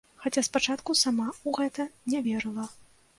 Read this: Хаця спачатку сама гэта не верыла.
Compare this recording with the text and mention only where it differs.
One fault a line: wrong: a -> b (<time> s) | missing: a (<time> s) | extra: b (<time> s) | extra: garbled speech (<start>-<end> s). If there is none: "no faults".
extra: ў (1.3 s)